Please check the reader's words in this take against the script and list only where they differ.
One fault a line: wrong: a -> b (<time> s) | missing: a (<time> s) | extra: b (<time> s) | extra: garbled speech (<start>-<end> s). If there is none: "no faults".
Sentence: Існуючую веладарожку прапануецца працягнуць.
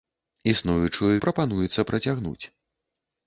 missing: веладарожку (1.1 s)